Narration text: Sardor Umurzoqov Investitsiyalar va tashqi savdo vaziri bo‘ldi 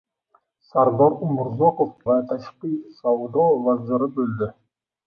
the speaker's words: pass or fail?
fail